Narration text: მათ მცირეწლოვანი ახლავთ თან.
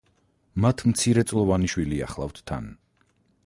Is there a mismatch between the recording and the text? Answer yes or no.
yes